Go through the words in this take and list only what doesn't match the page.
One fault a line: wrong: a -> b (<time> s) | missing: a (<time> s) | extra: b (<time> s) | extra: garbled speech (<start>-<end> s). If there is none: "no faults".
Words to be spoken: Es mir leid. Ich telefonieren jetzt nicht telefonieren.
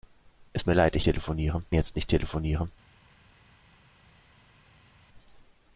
no faults